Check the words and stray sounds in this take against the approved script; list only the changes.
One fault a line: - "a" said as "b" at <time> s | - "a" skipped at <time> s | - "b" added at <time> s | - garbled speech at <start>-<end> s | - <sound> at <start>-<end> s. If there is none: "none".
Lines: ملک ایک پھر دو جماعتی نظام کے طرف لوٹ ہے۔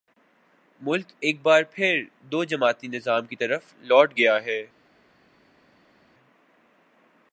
- "بار" added at 1.4 s
- "کے" said as "کی" at 3.2 s
- "گیا" added at 4.2 s